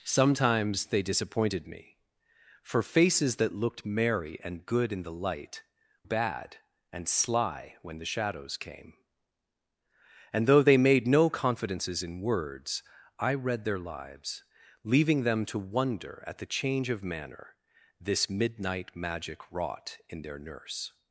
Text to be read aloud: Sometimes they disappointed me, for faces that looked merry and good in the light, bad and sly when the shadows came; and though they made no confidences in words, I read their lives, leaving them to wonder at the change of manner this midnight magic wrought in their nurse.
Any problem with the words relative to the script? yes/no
no